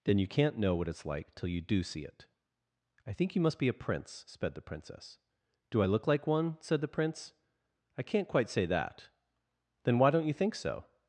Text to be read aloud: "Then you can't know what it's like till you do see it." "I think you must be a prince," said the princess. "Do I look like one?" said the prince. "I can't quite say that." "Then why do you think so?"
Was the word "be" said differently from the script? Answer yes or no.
no